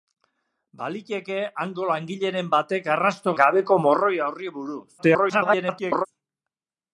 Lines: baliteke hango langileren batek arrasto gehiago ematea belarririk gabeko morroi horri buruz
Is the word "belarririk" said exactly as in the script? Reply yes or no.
no